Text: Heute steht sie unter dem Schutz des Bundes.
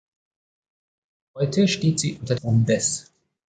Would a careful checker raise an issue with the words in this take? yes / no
yes